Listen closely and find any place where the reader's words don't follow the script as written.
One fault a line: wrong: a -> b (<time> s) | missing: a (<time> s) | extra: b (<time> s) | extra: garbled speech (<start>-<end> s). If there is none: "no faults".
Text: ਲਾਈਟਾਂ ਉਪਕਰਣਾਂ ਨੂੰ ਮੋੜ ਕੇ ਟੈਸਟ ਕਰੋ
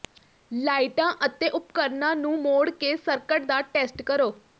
extra: ਅਤੇ (1.2 s)
extra: ਸਰਕਟ ਦਾ (3.0 s)